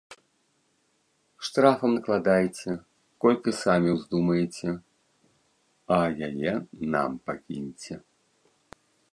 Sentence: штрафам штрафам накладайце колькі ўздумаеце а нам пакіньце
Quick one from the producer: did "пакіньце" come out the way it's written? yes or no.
yes